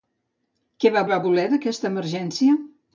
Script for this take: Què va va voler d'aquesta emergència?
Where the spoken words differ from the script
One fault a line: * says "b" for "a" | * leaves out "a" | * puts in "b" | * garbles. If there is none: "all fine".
all fine